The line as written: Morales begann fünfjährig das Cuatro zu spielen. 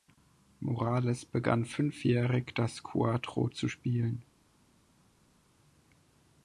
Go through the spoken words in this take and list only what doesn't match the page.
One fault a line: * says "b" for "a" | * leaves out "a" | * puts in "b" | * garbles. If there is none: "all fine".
all fine